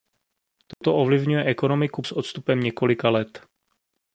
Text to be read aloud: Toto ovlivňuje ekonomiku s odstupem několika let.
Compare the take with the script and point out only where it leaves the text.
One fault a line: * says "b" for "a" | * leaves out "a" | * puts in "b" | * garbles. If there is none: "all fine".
all fine